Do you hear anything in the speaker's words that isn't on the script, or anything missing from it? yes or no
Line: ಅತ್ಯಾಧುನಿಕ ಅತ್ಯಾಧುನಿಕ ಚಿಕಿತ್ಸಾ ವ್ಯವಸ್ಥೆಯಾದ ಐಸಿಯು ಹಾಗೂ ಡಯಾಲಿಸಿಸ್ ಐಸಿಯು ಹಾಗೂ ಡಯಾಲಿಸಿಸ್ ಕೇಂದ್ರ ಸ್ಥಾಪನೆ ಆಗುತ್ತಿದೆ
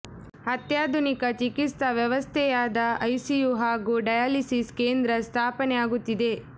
yes